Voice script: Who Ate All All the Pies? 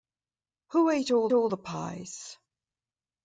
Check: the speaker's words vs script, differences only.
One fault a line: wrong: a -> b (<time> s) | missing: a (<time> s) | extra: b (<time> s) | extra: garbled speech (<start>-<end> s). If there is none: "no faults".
no faults